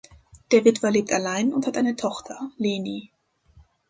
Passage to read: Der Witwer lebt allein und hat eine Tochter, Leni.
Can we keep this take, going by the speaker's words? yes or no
yes